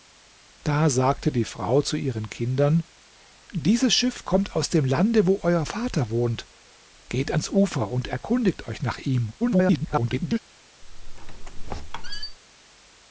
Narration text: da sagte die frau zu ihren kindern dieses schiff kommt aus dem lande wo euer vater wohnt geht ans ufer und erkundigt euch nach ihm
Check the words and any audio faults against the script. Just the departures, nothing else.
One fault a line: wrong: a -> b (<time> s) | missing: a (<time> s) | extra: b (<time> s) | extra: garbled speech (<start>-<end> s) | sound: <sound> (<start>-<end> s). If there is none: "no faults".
extra: garbled speech (9.4-10.4 s)
sound: squeak (10.8-12.4 s)